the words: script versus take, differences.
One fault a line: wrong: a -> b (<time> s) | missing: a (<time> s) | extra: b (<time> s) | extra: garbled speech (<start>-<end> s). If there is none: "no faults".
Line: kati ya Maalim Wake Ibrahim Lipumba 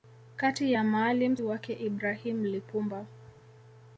no faults